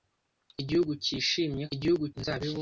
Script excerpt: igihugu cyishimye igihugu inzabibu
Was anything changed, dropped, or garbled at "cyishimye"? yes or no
no